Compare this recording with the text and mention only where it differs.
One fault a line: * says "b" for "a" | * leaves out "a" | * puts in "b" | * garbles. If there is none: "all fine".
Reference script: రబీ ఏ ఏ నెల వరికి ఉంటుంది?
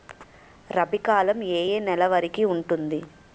* puts in "కాలం"